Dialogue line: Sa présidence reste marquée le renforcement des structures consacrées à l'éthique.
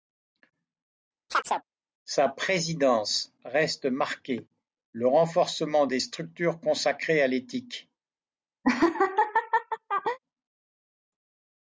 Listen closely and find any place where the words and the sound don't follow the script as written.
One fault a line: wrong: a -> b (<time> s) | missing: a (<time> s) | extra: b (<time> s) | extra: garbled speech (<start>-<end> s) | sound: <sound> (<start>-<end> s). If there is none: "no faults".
sound: chirp (1.3-1.6 s)
sound: laugh (8.6-10.2 s)